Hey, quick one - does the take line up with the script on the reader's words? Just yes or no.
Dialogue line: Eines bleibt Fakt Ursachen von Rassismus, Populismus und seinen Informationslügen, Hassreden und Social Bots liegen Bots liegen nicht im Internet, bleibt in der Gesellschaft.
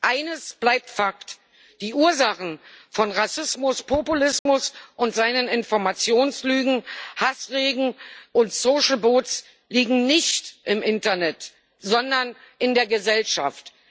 no